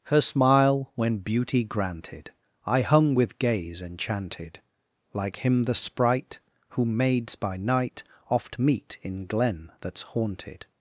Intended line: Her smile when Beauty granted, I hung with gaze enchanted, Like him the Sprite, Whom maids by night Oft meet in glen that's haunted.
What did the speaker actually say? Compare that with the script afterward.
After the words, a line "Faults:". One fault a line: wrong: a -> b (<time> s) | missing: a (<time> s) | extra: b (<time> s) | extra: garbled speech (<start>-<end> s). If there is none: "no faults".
Her smile when Beauty granted, I hung with gaze enchanted, Like him the Sprite, Whom maids by night Oft meet in glen that's haunted.
Faults:
no faults